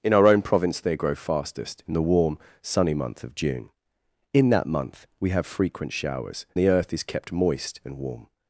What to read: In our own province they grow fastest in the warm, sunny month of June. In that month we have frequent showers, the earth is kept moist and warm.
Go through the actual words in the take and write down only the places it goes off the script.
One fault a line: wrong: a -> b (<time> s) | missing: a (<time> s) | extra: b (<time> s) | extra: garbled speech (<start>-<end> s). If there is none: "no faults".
no faults